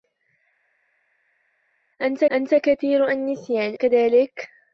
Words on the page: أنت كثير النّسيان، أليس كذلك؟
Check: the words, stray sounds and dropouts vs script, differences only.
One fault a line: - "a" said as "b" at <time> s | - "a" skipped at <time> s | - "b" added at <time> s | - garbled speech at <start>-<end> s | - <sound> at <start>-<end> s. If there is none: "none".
- "أنت" added at 2.3 s
- "أليس" skipped at 3.8 s